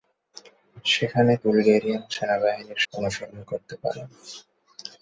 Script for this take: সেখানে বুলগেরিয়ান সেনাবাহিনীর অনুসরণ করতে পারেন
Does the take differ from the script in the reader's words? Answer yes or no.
no